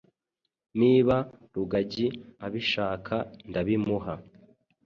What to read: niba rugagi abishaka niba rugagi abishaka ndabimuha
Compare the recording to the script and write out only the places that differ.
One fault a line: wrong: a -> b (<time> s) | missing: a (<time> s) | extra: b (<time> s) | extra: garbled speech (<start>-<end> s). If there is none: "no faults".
missing: niba rugagi abishaka (3.1 s)